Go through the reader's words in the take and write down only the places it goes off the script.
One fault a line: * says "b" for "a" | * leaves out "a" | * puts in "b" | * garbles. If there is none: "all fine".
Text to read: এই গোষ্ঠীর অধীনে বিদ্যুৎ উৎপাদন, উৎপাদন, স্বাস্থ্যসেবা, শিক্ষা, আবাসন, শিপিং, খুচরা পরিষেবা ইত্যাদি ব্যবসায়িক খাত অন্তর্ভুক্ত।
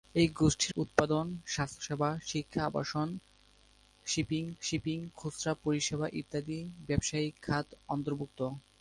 * leaves out "অধীনে বিদ্যুৎ"
* leaves out "উৎপাদন"
* puts in "শিপিং"